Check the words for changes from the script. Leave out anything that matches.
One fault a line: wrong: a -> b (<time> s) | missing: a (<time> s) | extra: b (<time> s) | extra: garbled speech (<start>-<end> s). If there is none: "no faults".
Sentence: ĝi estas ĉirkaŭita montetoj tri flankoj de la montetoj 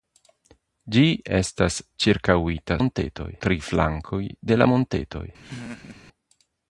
no faults